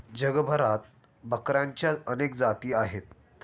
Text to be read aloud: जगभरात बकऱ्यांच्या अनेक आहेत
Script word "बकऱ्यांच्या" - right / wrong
right